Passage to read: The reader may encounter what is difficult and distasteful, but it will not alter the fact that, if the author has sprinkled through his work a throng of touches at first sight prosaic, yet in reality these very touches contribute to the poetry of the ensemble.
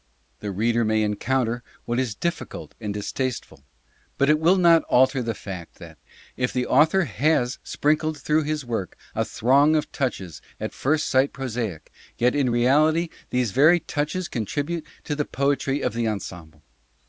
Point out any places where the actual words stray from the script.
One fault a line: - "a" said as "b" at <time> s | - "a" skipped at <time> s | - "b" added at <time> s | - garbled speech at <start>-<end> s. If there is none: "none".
none